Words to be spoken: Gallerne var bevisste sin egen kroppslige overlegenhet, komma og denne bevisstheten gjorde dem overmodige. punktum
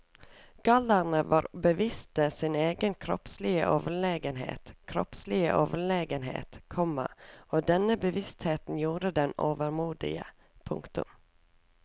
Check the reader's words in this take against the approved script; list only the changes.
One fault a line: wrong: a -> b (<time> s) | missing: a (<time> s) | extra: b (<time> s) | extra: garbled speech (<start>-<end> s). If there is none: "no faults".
extra: kroppslige overlegenhet (4.8 s)